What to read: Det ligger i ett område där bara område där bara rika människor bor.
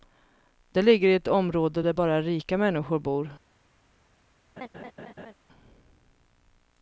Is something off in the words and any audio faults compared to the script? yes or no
yes